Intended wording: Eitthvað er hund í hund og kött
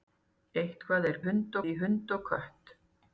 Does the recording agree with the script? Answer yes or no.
yes